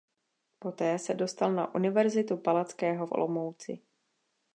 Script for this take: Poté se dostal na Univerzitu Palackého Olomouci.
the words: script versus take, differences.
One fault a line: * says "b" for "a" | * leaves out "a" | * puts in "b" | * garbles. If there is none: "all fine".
all fine